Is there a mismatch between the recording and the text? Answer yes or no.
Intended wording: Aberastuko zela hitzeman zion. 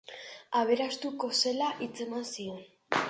no